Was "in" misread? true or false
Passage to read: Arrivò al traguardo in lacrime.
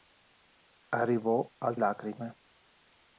true